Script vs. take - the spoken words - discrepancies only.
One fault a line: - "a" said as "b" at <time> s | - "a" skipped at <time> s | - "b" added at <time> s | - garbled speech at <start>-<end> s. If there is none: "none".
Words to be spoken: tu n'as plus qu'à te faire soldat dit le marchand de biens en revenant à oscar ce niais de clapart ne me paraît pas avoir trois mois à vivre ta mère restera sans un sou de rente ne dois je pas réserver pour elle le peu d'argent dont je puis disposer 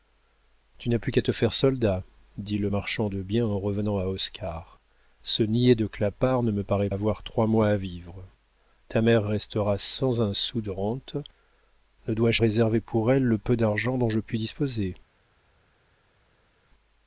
- "pas" skipped at 6.9 s
- "pas" skipped at 12.4 s